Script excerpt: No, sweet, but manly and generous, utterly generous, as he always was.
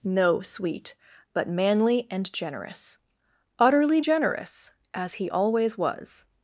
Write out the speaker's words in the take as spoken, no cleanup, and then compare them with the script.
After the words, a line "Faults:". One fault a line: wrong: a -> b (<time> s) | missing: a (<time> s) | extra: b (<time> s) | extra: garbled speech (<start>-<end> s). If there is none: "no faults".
No, sweet, but manly and generous, utterly generous, as he always was.
Faults:
no faults